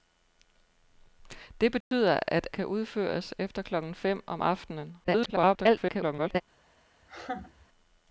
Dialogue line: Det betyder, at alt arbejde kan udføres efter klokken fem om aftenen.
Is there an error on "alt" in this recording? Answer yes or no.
yes